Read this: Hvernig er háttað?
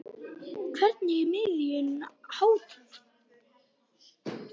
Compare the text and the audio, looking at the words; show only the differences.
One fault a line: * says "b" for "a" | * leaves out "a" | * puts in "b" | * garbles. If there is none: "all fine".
* puts in "miðunum"